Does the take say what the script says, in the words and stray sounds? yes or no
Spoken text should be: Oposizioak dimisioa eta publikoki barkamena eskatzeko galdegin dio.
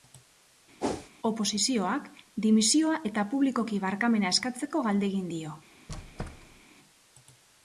no